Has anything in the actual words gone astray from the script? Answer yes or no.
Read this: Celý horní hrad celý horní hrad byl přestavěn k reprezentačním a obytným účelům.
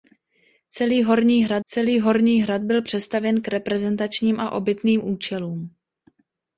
no